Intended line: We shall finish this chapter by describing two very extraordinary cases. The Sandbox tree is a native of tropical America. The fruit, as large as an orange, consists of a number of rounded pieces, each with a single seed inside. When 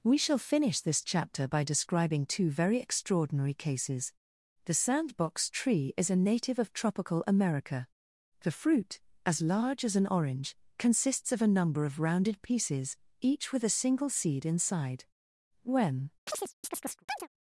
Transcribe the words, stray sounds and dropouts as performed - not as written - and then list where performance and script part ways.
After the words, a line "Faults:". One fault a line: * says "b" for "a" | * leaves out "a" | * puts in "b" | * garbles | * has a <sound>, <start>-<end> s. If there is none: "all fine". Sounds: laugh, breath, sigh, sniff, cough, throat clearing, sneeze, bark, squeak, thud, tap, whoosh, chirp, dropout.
We shall finish this chapter by describing two very extraordinary cases. The Sandbox tree is a native of tropical America. The fruit, as large as an orange, consists of a number of rounded pieces, each with a single seed inside. When
Faults:
* has a chirp, 16.3-17.3 s